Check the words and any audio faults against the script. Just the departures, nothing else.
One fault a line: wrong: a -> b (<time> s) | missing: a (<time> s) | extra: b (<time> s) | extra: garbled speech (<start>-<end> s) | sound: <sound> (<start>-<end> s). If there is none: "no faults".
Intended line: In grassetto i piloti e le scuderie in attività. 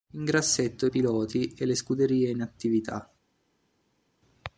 no faults